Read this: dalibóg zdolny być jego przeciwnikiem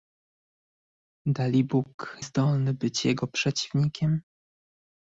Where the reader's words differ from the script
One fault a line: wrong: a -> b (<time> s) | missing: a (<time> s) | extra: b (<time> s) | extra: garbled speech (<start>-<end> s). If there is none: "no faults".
no faults